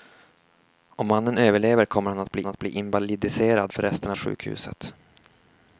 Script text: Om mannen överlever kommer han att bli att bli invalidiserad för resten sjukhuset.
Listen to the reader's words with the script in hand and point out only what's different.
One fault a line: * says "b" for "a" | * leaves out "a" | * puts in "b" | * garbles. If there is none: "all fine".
all fine